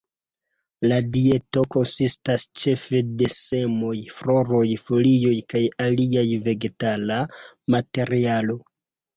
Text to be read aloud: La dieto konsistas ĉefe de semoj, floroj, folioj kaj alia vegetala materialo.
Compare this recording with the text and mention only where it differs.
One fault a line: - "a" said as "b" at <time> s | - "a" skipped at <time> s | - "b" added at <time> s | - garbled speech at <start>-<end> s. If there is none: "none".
none